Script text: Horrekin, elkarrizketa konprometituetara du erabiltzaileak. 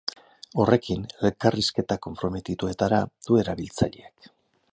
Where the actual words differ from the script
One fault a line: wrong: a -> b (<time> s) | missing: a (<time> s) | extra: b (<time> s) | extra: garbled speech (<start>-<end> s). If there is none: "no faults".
no faults